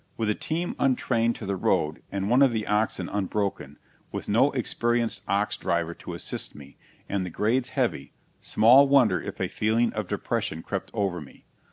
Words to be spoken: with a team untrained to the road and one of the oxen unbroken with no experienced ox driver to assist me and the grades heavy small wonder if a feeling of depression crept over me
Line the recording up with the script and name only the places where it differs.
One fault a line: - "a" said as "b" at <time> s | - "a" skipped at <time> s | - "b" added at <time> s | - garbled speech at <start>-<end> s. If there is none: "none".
none